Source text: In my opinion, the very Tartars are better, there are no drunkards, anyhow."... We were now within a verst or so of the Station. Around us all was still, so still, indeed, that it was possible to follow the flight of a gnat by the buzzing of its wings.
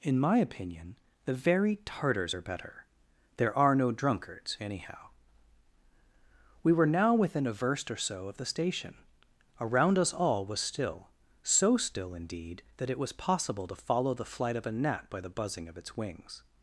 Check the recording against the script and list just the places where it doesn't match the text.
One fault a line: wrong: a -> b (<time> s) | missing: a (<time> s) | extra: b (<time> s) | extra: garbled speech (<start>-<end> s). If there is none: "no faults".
no faults